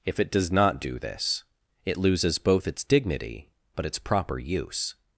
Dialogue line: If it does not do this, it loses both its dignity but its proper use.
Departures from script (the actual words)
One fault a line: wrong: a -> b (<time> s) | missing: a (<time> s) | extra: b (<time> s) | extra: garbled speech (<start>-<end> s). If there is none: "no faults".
no faults